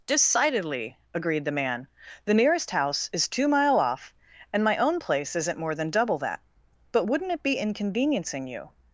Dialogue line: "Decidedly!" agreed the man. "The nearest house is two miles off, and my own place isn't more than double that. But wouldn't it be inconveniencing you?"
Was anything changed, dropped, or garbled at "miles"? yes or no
yes